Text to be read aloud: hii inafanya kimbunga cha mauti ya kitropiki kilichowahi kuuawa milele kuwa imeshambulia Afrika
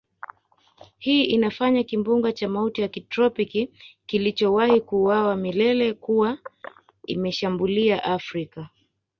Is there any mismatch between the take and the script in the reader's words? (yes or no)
no